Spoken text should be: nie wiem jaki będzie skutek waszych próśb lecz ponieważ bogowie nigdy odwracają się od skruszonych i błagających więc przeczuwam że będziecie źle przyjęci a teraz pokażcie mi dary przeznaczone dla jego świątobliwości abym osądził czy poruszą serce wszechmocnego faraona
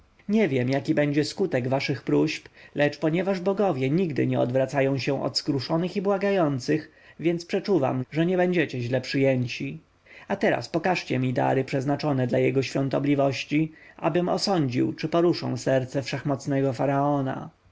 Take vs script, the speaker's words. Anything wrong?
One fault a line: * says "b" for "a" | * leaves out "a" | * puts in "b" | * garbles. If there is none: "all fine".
* puts in "nie"
* puts in "nie"